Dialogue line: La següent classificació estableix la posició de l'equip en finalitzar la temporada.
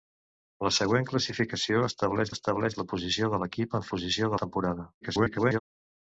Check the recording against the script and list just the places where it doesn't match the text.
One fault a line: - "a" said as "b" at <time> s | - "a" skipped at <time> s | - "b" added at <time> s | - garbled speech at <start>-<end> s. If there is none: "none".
- "estableix" added at 2.3 s
- "finalitzar" said as "posició" at 4.0 s
- garbled speech at 5.0-5.6 s